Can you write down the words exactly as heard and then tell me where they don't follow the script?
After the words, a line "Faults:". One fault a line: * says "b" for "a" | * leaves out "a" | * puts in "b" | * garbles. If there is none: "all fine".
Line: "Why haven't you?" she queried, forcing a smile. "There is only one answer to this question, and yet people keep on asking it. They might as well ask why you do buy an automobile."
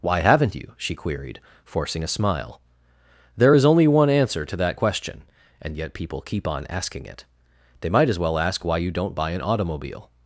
"Why haven't you?" she queried, forcing a smile. "There is only one answer to that question, and yet people keep on asking it. They might as well ask why you don't buy an automobile."
Faults:
* says "that" for "this"
* says "don't" for "do"